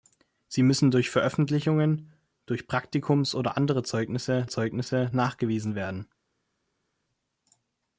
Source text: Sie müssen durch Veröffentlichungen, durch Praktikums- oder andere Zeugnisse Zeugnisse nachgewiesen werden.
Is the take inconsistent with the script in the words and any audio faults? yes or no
no